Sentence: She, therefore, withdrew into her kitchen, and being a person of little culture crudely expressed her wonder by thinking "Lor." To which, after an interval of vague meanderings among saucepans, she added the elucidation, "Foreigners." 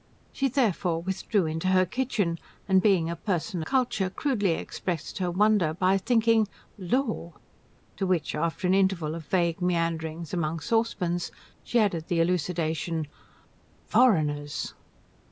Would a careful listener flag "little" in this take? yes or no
yes